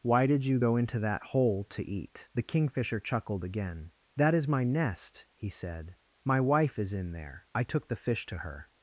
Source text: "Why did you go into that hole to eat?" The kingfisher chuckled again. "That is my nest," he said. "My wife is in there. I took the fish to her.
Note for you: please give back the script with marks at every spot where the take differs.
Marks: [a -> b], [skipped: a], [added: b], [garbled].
"Why did you go into that hole to eat?" The kingfisher chuckled again. "That is my nest," he said. "My wife is in there. I took the fish to her.